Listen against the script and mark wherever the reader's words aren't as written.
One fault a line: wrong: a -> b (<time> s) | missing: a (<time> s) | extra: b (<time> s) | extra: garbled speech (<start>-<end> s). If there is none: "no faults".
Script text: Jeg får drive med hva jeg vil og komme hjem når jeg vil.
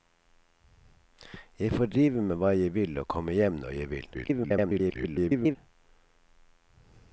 extra: garbled speech (4.1-5.6 s)